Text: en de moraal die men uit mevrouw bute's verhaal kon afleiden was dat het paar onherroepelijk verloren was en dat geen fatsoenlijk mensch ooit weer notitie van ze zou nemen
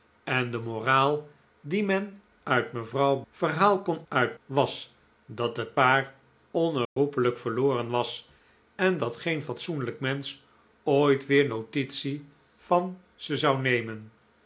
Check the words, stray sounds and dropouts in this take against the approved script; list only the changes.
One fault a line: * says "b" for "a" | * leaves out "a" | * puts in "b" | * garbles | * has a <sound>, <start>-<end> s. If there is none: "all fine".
* leaves out "bute's"
* says "uit" for "afleiden"
* has a dropout, 6.8-7.0 s